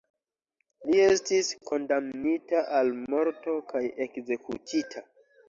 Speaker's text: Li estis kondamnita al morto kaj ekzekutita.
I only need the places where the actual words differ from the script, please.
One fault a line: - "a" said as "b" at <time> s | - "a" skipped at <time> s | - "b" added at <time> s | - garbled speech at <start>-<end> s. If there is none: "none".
none